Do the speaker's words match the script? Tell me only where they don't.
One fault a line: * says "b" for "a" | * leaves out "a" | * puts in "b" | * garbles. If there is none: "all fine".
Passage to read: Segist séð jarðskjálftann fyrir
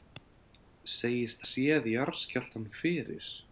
all fine